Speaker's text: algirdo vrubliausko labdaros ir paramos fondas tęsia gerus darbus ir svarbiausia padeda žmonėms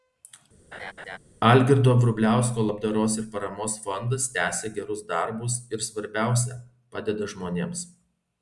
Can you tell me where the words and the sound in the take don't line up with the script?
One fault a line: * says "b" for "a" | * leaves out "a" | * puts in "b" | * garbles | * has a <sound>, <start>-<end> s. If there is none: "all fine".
* has a laugh, 0.7-1.2 s